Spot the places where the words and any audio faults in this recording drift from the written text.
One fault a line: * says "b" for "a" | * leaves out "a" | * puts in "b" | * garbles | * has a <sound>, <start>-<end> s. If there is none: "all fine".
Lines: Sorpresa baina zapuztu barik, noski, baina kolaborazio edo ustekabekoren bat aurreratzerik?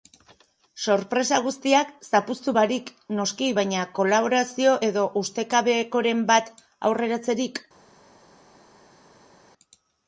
* says "guztiak" for "baina"